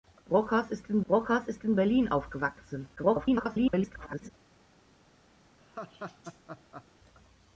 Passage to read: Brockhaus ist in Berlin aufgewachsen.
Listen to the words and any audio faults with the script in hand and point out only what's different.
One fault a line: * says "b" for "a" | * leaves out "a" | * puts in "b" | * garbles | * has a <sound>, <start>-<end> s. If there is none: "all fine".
* puts in "brockhaus ist in"
* garbles
* has a laugh, 5.6-6.8 s